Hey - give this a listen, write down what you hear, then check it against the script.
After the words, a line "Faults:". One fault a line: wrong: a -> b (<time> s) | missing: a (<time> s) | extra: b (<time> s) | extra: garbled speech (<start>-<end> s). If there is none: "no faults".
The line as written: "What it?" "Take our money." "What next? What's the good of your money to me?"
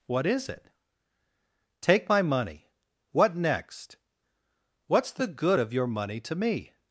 "What is it?" "Take my money." "What next? What's the good of your money to me?"
Faults:
extra: is (0.2 s)
wrong: our -> my (2.1 s)